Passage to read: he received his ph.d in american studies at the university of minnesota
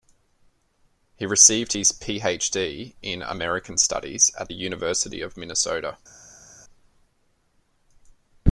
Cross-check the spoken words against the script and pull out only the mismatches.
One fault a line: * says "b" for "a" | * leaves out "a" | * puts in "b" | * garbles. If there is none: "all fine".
all fine